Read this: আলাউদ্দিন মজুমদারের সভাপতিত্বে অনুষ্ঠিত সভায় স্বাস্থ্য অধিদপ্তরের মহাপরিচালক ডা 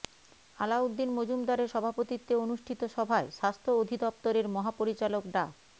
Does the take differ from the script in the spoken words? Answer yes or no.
no